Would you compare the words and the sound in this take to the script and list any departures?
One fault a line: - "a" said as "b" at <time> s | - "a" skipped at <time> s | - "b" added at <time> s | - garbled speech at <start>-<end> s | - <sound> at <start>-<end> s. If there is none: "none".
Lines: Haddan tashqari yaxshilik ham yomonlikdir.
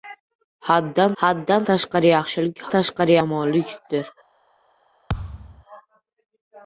- "haddan" added at 1.2 s
- "ham" said as "tashqari" at 2.7 s
- thud at 5.1-5.6 s